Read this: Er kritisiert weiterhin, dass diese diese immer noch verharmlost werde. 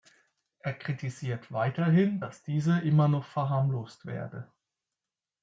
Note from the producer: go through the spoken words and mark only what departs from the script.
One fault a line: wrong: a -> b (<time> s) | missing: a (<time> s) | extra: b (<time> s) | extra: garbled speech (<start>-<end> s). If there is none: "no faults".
missing: diese (2.8 s)